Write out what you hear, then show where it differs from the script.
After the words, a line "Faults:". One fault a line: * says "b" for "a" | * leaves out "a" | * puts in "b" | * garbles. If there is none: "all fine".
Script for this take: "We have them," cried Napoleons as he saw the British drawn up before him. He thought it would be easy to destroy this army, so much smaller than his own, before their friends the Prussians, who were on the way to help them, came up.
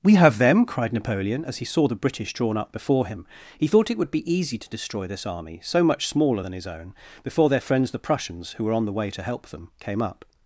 "We have them," cried Napoleon as he saw the British drawn up before him. He thought it would be easy to destroy this army, so much smaller than his own, before their friends the Prussians, who were on the way to help them, came up.
Faults:
* says "Napoleon" for "Napoleons"